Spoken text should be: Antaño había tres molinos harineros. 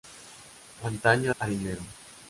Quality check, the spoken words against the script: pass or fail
fail